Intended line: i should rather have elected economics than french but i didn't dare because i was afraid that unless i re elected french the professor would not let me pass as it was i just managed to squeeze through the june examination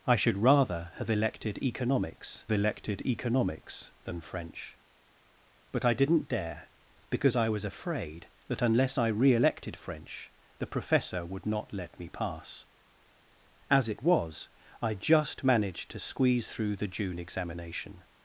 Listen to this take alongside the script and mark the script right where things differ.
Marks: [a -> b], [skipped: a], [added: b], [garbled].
i should rather have elected economics [added: elected economics] than french but i didn't dare because i was afraid that unless i re elected french the professor would not let me pass as it was i just managed to squeeze through the june examination